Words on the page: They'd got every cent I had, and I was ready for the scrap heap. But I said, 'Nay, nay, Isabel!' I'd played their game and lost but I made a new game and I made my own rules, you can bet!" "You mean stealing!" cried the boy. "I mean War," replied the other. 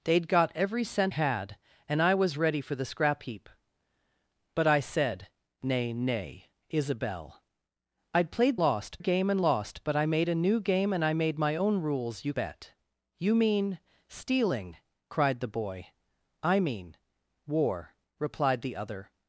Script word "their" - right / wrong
wrong